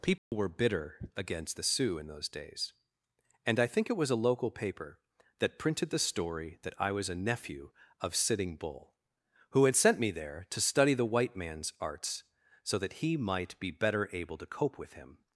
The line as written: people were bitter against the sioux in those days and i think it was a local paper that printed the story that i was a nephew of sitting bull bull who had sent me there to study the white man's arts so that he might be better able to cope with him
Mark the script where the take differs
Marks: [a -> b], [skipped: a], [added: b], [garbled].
people were bitter against the sioux in those days and i think it was a local paper that printed the story that i was a nephew of sitting bull [skipped: bull] who had sent me there to study the white man's arts so that he might be better able to cope with him